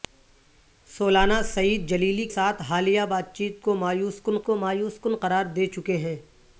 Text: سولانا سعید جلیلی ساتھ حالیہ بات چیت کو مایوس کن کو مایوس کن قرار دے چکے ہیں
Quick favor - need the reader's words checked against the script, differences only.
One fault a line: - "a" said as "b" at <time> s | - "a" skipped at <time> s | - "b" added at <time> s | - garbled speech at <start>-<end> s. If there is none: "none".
none